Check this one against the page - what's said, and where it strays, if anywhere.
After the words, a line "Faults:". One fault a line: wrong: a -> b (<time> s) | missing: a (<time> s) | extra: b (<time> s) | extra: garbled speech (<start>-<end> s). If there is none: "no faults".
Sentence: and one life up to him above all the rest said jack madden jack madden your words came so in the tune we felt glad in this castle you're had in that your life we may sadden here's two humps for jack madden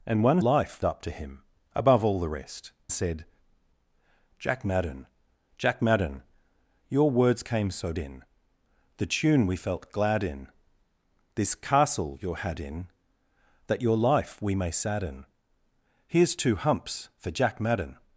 and one life up to him above all the rest said jack madden jack madden your words came so in the tune we felt glad in this castle you're had in that your life we may sadden here's two humps for jack madden
Faults:
no faults